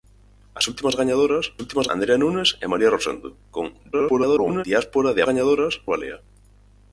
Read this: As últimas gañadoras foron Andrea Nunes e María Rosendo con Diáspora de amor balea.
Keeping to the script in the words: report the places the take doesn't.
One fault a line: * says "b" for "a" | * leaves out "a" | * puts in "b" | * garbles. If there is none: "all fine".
* says "últimas" for "foron"
* garbles
* says "gañadoras" for "amor"